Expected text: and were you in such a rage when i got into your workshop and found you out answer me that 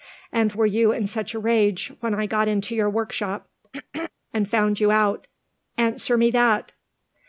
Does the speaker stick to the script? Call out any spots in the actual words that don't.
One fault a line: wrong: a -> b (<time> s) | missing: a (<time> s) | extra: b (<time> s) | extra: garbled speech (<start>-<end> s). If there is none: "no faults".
no faults